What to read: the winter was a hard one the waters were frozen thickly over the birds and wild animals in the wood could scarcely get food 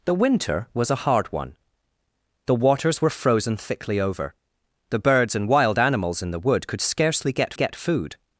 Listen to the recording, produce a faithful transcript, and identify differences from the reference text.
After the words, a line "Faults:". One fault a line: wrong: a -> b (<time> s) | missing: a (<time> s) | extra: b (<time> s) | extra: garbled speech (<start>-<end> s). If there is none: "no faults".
the winter was a hard one the waters were frozen thickly over the birds and wild animals in the wood could scarcely get get food
Faults:
extra: get (7.5 s)